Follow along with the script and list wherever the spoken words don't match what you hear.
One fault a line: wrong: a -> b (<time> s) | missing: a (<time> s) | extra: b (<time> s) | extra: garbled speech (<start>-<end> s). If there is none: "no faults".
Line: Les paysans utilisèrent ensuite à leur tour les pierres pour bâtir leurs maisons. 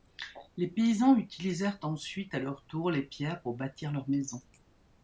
no faults